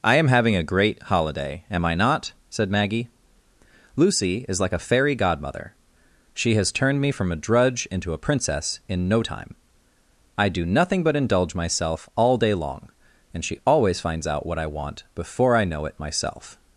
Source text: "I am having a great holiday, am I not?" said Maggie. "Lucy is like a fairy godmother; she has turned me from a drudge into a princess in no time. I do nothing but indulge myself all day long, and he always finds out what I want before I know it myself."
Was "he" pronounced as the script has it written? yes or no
no